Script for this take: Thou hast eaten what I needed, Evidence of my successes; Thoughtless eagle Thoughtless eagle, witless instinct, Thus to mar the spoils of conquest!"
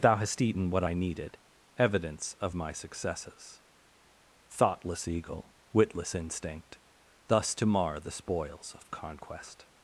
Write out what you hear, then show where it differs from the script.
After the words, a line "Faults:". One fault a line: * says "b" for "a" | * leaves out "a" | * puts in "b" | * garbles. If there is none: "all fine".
Thou hast eaten what I needed, Evidence of my successes; Thoughtless eagle, witless instinct, Thus to mar the spoils of conquest!"
Faults:
* leaves out "Thoughtless eagle"